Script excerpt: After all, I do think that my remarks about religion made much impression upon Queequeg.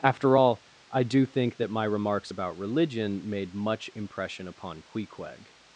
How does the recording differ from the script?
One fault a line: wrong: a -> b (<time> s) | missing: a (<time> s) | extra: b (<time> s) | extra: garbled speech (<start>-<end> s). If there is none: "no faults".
no faults